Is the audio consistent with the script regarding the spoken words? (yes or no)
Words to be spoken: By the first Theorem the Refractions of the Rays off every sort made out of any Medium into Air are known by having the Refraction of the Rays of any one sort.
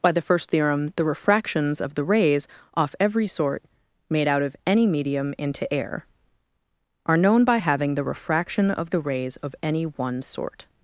yes